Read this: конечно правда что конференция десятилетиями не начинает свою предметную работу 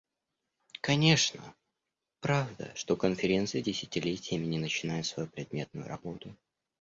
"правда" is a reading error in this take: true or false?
false